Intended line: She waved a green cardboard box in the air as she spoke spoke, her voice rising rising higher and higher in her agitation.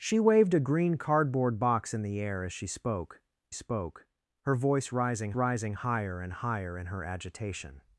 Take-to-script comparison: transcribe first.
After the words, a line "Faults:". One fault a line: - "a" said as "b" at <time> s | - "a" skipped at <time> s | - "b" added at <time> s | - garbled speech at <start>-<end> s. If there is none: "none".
She waved a green cardboard box in the air as she spoke spoke, her voice rising rising higher and higher in her agitation.
Faults:
none